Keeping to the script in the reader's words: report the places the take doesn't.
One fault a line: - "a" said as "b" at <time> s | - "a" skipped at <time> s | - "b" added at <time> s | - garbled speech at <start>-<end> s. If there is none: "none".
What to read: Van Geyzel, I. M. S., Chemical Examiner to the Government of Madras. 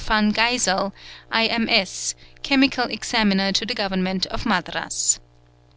none